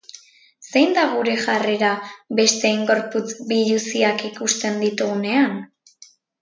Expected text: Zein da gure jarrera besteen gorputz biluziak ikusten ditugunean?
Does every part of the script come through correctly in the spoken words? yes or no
yes